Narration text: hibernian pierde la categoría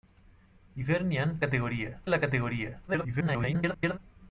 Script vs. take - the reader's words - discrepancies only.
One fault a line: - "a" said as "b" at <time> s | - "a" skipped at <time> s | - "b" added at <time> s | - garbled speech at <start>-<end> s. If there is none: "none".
- "pierde" said as "categoría" at 1.4 s
- garbled speech at 2.9-4.0 s